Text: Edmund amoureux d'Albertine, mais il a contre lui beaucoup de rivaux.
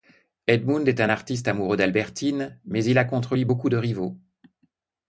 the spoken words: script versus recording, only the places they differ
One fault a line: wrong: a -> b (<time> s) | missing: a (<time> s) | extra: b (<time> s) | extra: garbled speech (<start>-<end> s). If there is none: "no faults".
extra: est un artiste (0.9 s)